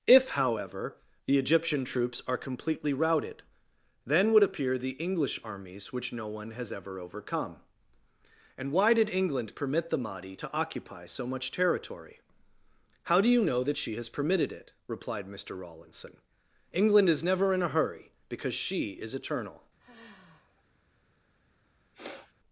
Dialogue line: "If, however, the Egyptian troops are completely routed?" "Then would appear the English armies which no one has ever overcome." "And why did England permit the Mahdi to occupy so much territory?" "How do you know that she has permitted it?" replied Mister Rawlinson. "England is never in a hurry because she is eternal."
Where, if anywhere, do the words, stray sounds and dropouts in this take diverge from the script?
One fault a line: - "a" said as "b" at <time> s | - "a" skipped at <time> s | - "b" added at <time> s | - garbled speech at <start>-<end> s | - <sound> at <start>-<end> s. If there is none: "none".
- sigh at 19.8-20.6 s
- sniff at 21.9-22.3 s